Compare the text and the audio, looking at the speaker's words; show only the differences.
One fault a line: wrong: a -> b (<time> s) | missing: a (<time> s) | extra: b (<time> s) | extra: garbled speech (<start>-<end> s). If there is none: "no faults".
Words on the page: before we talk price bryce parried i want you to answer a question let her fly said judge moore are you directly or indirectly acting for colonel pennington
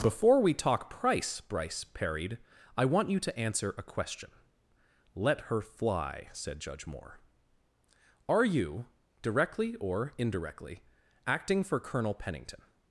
no faults